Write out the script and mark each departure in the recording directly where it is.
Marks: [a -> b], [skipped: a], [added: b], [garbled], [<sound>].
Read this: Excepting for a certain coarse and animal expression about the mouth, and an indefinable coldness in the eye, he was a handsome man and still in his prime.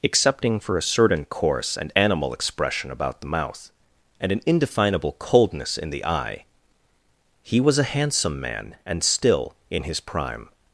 Excepting for a certain coarse and animal expression about the mouth, and an indefinable coldness in the eye, he was a handsome man and still in his prime.